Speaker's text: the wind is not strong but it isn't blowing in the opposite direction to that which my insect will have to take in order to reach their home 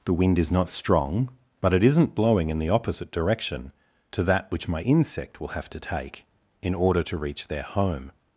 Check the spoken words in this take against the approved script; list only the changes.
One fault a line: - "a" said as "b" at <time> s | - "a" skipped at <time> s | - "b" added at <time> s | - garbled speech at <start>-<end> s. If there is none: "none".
none